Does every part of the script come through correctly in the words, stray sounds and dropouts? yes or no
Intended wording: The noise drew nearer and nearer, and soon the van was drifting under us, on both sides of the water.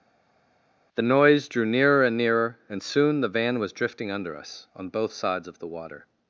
yes